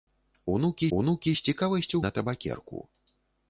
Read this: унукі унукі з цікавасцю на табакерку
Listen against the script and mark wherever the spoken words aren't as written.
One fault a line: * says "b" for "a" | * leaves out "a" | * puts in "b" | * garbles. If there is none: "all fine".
all fine